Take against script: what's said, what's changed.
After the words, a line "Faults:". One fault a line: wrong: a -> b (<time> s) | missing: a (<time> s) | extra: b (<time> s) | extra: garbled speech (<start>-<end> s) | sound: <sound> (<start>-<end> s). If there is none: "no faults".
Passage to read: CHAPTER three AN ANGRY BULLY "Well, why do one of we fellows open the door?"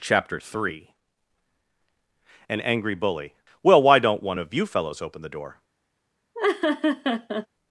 CHAPTER three AN ANGRY BULLY "Well, why don't one of you fellows open the door?"
Faults:
wrong: do -> don't (4.0 s)
wrong: we -> you (4.5 s)
sound: laugh (6.3-7.5 s)